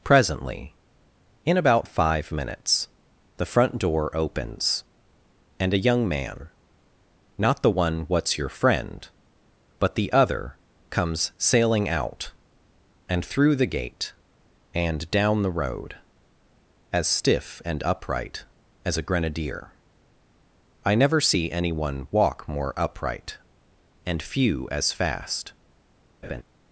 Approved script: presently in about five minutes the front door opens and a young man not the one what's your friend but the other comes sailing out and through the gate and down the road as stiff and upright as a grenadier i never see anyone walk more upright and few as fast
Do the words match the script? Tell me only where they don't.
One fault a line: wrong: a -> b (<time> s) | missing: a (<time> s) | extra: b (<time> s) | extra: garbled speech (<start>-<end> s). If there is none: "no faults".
no faults